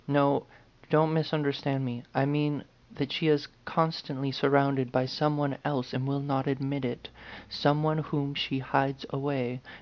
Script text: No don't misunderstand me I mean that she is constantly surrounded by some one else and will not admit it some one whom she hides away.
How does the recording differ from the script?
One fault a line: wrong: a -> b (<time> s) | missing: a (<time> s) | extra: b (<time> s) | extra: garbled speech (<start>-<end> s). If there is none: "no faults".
no faults